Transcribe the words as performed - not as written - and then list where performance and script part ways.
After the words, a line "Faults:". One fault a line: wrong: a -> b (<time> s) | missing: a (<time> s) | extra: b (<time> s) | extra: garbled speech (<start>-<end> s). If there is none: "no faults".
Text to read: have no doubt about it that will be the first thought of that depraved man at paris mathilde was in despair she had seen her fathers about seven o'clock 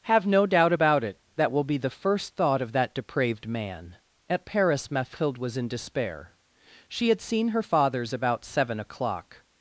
have no doubt about it that will be the first thought of that depraved man at paris mathilde was in despair she had seen her fathers about seven o'clock
Faults:
no faults